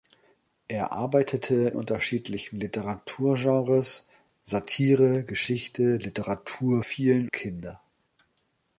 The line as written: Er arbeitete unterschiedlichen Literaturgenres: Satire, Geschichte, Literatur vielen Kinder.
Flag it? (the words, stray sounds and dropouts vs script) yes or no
no